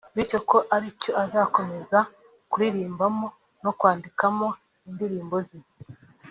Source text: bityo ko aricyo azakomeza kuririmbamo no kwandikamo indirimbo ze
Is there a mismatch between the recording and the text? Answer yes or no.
no